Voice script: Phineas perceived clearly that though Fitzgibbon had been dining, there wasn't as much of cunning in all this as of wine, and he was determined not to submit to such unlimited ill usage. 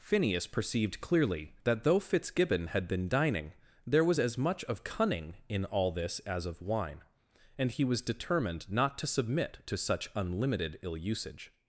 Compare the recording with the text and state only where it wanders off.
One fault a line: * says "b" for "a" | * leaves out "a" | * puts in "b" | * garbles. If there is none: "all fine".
* says "was" for "wasn't"